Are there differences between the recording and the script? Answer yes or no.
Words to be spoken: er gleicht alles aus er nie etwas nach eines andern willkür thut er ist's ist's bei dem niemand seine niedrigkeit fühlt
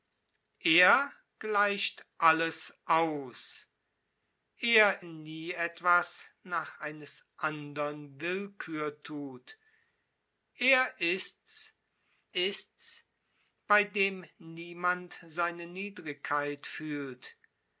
no